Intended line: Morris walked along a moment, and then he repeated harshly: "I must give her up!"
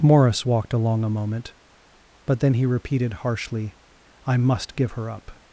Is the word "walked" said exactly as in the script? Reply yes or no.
yes